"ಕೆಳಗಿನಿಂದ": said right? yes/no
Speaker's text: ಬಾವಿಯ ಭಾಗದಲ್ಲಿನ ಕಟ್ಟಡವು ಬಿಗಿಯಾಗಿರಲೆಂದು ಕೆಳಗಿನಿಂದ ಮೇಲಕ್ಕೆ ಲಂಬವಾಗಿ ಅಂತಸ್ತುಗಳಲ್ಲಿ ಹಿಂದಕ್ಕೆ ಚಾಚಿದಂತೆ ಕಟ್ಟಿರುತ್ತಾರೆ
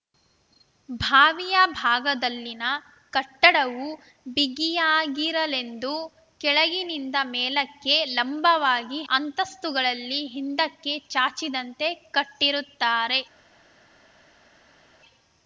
yes